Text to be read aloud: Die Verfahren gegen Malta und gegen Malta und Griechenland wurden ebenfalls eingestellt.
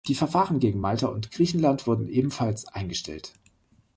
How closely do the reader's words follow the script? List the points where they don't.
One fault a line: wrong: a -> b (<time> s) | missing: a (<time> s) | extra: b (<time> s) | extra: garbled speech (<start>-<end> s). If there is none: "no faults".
missing: gegen Malta und (1.3 s)